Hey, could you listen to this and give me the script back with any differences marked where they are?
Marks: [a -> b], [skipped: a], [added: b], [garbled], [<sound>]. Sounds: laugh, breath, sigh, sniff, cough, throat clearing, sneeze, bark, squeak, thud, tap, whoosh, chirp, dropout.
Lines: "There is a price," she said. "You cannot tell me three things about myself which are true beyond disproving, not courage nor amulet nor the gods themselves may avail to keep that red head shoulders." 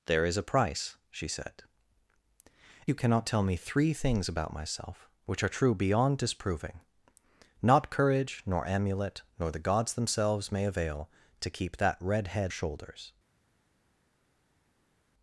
"There is a price," she said. "You cannot tell me three things about myself which are true beyond disproving, not courage nor amulet nor the gods themselves may avail to keep that red head shoulders."